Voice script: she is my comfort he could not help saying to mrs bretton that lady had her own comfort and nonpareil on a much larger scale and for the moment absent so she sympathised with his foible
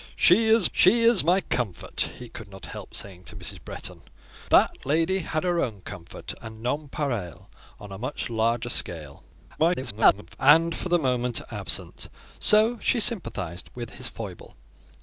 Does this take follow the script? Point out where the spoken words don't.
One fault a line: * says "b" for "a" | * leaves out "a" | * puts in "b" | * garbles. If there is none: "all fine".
* puts in "she is"
* garbles